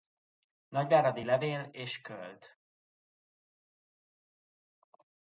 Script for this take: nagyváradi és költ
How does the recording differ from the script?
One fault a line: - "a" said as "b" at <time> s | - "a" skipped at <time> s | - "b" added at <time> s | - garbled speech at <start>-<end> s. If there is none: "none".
- "levél" added at 1.2 s